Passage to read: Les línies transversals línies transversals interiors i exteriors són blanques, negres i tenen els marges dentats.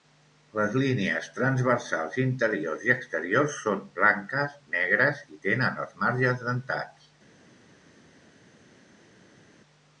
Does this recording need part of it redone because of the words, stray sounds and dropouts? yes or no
yes